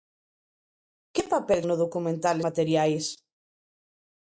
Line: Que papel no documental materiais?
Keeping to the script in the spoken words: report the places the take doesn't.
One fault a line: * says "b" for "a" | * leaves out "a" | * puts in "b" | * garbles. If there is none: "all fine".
all fine